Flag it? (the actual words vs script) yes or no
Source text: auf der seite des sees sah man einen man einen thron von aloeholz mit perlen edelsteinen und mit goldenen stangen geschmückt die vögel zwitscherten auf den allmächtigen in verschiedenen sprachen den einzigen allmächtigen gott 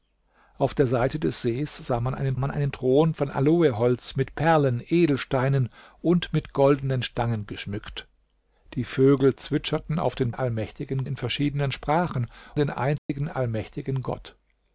no